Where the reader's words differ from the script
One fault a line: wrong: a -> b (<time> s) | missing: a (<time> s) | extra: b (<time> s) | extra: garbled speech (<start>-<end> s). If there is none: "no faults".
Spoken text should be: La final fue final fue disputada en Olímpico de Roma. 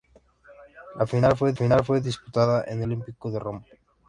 no faults